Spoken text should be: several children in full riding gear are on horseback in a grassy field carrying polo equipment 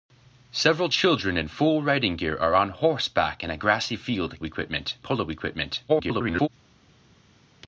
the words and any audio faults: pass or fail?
fail